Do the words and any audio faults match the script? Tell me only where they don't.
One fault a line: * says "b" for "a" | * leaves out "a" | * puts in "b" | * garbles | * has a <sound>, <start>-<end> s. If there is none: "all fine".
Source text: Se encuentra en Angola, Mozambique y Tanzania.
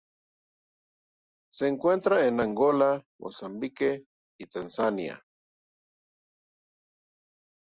all fine